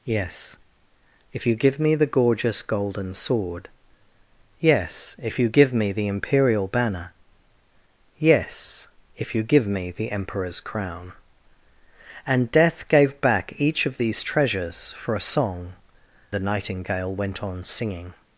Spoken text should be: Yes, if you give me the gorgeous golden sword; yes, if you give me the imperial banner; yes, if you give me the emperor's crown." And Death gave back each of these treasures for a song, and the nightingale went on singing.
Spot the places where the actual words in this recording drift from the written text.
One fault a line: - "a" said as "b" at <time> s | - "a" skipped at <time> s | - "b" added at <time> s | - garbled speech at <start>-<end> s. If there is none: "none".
- "and" skipped at 15.8 s